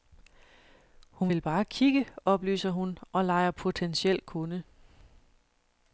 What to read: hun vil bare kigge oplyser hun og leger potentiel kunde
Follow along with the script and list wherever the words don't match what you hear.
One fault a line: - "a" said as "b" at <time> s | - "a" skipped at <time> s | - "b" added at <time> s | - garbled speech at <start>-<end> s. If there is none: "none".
none